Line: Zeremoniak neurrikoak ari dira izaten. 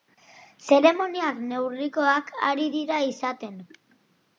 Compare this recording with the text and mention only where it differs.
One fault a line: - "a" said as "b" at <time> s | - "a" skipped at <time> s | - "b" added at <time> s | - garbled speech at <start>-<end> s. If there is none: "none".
none